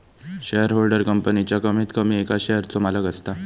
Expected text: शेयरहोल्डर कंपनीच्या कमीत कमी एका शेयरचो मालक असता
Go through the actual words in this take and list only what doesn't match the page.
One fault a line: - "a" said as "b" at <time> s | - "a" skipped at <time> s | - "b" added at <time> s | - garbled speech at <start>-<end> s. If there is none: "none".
none